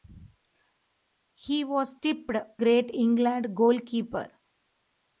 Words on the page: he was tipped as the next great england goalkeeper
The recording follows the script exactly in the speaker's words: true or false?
false